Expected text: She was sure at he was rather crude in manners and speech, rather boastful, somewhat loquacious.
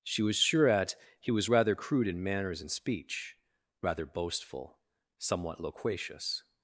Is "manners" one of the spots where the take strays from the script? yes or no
no